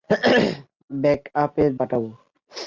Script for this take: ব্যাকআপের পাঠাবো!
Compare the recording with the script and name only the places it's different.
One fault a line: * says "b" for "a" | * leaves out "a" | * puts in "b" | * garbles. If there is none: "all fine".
all fine